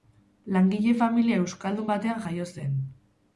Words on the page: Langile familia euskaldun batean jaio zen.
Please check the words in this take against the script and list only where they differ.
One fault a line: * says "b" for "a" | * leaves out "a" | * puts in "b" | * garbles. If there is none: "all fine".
all fine